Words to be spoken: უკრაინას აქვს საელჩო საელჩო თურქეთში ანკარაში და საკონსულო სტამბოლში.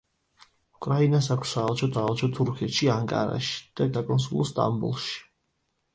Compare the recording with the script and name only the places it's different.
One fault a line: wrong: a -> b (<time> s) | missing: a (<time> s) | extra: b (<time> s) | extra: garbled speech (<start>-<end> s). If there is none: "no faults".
no faults